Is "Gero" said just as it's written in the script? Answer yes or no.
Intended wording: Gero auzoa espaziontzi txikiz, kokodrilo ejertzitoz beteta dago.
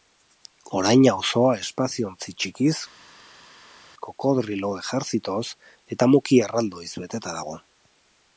no